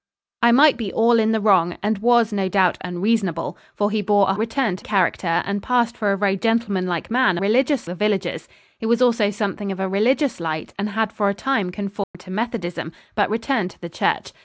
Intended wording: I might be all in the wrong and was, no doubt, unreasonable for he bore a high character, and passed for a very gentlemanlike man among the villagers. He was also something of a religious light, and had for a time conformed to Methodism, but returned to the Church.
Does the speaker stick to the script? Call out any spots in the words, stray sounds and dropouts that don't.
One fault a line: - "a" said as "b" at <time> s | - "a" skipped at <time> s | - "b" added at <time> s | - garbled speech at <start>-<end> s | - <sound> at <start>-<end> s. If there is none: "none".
- "high" said as "returned" at 4.4 s
- "among" said as "religious" at 7.4 s
- dropout at 12.0-12.1 s